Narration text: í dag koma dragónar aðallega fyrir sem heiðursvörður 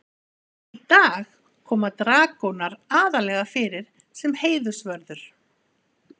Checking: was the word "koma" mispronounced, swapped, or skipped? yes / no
no